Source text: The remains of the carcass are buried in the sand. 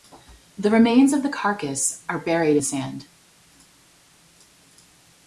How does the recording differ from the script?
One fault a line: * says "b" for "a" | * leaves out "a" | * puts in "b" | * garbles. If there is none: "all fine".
* leaves out "in"